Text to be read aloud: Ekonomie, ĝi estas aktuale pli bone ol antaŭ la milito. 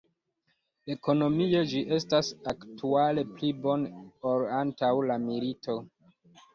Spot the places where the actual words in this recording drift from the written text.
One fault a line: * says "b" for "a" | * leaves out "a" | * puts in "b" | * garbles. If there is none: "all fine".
all fine